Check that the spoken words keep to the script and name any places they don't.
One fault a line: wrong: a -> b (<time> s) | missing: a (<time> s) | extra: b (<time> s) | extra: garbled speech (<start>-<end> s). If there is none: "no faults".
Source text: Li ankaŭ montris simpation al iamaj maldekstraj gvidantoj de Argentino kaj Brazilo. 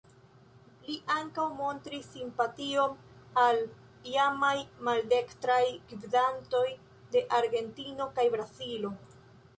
no faults